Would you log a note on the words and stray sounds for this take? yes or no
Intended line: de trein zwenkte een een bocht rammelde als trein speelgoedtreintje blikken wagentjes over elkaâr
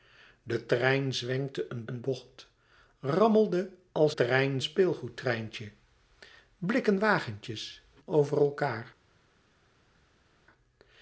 no